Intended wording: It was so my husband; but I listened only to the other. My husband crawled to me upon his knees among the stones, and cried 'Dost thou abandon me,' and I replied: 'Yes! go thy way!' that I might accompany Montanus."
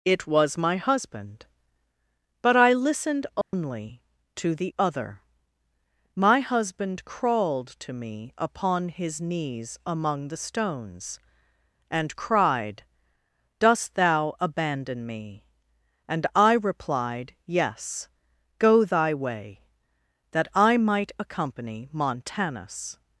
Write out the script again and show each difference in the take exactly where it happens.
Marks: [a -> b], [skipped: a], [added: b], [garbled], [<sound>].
It was [skipped: so] my husband; but I listened only [dropout] to the other. My husband crawled to me upon his knees among the stones, and cried 'Dost thou abandon me,' and I replied: 'Yes! go thy way!' that I might accompany Montanus."